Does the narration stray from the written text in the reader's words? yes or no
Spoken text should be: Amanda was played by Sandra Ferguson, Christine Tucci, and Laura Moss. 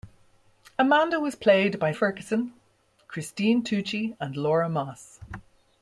yes